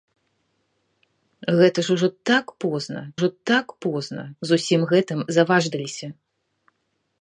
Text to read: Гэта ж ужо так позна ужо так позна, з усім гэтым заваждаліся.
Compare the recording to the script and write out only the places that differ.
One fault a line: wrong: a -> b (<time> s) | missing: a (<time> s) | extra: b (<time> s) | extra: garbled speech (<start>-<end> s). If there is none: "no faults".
no faults